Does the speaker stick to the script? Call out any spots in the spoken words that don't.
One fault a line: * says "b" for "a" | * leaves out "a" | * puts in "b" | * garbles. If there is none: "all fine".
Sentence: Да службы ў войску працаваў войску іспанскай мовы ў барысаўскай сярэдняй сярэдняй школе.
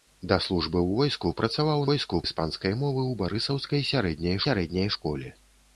all fine